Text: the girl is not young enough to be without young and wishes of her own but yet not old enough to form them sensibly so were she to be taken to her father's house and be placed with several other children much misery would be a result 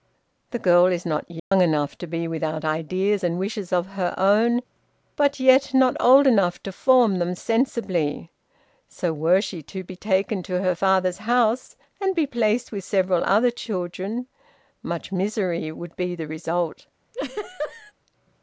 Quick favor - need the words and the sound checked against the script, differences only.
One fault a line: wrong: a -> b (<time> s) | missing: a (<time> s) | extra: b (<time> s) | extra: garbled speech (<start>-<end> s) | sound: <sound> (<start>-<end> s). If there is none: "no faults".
sound: dropout (1.4-1.5 s)
wrong: young -> ideas (2.6 s)
wrong: a -> the (16.1 s)
sound: laugh (17.1-17.9 s)